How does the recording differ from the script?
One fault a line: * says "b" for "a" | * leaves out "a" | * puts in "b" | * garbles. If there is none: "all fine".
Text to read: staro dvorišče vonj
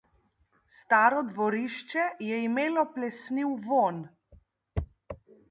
* puts in "je imelo plesniv"